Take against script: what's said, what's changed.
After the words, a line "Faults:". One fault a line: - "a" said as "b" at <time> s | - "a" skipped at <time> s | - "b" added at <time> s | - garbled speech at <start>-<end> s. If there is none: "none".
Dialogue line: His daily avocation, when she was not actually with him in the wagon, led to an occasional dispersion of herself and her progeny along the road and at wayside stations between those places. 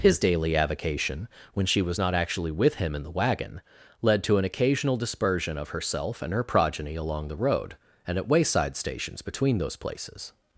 His daily avocation, when she was not actually with him in the wagon, led to an occasional dispersion of herself and her progeny along the road and at wayside stations between those places.
Faults:
none